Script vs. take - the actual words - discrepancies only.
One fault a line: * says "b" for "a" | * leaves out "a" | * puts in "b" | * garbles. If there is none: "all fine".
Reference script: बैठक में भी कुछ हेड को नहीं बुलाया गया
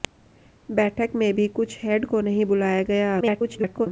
* garbles